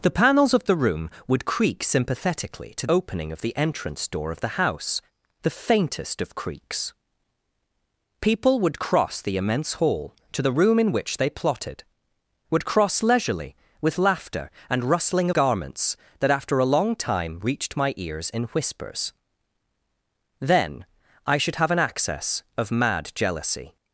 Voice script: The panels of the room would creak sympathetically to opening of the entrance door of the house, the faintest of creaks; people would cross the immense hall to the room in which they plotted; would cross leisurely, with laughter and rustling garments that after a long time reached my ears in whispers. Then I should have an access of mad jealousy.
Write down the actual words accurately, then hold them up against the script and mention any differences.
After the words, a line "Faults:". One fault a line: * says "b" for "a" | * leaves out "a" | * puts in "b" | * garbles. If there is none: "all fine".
The panels of the room would creak sympathetically to opening of the entrance door of the house, the faintest of creaks; people would cross the immense hall to the room in which they plotted; would cross leisurely, with laughter and rustling garments that after a long time reached my ears in whispers. Then I should have an access of mad jealousy.
Faults:
all fine